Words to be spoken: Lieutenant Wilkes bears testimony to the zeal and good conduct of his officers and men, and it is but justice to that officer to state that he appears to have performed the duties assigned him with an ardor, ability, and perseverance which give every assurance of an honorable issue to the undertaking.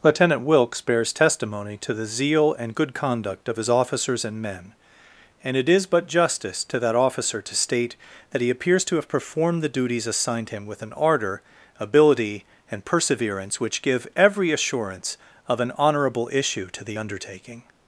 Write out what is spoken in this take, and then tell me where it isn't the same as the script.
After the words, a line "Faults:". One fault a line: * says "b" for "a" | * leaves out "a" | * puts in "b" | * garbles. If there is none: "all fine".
Lieutenant Wilkes bears testimony to the zeal and good conduct of his officers and men, and it is but justice to that officer to state that he appears to have performed the duties assigned him with an ardor, ability, and perseverance which give every assurance of an honorable issue to the undertaking.
Faults:
all fine